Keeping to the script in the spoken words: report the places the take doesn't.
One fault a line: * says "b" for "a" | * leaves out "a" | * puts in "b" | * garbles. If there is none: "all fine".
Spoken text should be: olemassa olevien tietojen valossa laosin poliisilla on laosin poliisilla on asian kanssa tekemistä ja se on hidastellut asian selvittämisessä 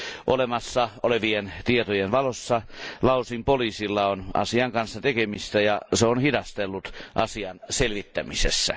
* leaves out "laosin poliisilla on"